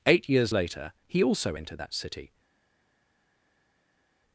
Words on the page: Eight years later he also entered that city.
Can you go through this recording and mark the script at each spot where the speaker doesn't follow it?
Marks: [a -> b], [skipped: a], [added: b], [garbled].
Eight years later he also entered that city.